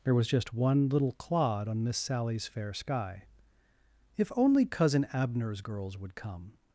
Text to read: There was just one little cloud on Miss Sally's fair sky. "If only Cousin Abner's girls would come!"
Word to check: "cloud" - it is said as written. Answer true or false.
false